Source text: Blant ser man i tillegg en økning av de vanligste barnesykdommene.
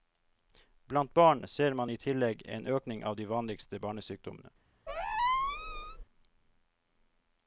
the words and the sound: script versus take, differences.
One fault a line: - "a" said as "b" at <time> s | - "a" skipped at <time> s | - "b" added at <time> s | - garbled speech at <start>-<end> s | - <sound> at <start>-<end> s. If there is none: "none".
- "barn" added at 1.1 s
- squeak at 4.9-6.0 s